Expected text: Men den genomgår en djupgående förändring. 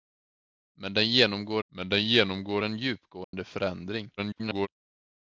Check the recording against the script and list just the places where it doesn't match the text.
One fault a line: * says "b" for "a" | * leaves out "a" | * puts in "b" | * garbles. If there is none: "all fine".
* puts in "men den genomgår"
* garbles